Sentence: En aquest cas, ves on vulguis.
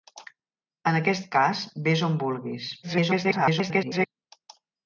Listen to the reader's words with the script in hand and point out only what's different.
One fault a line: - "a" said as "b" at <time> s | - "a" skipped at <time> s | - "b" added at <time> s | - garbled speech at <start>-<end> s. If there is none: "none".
- garbled speech at 2.8-4.1 s